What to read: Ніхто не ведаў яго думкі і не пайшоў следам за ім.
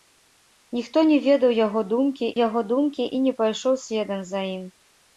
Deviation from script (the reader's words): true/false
true